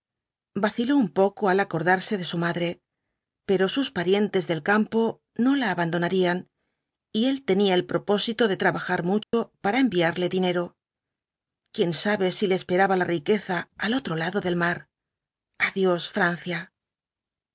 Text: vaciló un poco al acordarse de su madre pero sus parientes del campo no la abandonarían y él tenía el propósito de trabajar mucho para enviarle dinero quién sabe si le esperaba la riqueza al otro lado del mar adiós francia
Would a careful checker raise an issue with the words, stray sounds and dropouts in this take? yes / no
yes